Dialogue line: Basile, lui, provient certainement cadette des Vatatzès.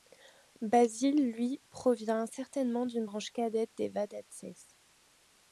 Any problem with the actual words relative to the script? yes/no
yes